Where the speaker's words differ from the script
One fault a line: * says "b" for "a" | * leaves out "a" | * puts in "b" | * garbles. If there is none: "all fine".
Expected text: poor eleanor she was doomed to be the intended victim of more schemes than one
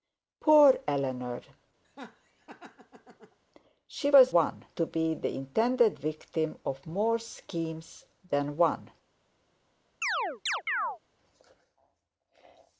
* says "one" for "doomed"